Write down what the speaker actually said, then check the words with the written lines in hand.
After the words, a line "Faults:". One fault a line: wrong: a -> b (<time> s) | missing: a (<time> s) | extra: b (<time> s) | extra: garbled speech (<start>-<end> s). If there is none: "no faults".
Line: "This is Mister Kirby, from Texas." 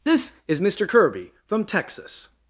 "This is Mister Kirby, from Texas."
Faults:
no faults